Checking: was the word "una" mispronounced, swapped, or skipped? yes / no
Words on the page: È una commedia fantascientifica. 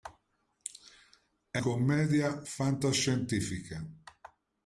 yes